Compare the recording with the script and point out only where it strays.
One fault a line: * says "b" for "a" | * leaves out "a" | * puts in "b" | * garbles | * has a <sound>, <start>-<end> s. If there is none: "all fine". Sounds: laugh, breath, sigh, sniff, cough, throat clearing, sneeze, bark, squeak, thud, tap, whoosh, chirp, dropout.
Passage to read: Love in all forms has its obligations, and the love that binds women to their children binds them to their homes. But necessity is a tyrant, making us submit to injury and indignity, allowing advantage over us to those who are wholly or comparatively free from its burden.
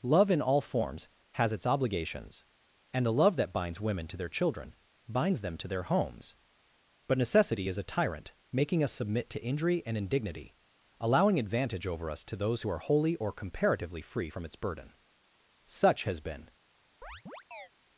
* puts in "Such has been"
* has a chirp, 17.0-17.7 s